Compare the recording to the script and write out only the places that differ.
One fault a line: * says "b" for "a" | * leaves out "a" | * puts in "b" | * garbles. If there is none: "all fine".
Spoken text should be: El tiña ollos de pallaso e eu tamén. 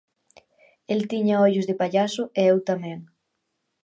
all fine